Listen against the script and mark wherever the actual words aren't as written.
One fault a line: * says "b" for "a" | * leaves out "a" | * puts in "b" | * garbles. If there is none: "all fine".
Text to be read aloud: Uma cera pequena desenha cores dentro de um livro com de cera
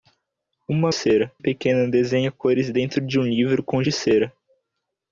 all fine